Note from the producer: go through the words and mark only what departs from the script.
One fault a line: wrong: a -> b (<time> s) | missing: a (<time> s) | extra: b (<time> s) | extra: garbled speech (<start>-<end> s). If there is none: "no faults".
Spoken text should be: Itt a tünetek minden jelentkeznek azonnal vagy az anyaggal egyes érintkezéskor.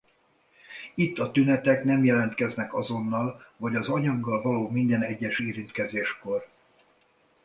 wrong: minden -> nem (1.8 s)
extra: való minden (4.4 s)